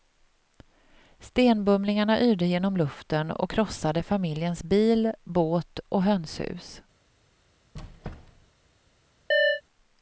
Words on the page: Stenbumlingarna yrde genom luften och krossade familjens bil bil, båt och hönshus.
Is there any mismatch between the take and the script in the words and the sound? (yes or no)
yes